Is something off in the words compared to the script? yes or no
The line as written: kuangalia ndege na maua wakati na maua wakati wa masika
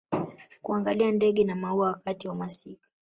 yes